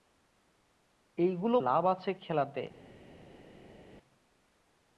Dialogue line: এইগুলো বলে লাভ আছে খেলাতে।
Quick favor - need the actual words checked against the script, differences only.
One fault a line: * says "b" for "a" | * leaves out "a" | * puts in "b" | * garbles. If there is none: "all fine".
* leaves out "বলে"